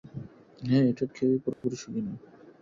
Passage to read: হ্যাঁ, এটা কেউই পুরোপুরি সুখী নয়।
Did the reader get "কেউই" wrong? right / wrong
right